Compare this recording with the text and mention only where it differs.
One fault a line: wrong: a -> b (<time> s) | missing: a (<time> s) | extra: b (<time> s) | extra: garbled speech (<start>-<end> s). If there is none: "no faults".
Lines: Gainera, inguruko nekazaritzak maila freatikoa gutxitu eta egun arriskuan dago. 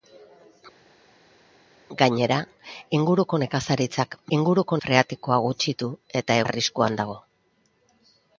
wrong: maila -> inguruko (4.4 s)
missing: egun (6.4 s)